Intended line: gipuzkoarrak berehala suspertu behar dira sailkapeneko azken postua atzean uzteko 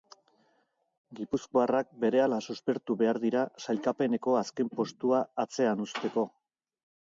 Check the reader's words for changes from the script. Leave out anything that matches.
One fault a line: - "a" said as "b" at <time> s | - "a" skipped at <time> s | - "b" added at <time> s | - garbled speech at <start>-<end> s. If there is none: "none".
none